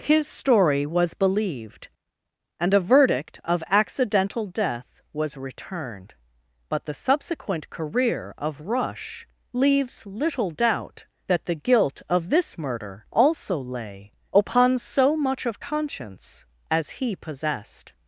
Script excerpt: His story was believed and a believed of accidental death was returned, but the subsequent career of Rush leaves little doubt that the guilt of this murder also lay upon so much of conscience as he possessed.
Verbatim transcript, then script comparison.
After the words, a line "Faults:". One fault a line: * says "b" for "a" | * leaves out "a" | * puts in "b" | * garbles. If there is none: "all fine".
His story was believed and a verdict of accidental death was returned, but the subsequent career of Rush leaves little doubt that the guilt of this murder also lay upon so much of conscience as he possessed.
Faults:
* says "verdict" for "believed"